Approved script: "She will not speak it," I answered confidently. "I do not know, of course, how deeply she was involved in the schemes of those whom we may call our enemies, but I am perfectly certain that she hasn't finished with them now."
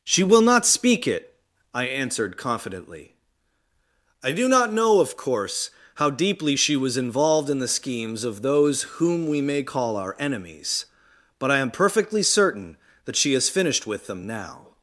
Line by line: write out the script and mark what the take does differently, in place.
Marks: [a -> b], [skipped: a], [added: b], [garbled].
"She will not speak it," I answered confidently. "I do not know, of course, how deeply she was involved in the schemes of those whom we may call our enemies, but I am perfectly certain that she [hasn't -> has] finished with them now."